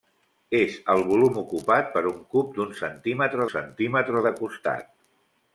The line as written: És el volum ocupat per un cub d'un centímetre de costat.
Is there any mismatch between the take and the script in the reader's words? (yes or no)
yes